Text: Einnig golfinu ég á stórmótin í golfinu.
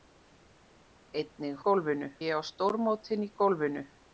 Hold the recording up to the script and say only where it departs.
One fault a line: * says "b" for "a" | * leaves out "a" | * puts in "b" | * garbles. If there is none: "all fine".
all fine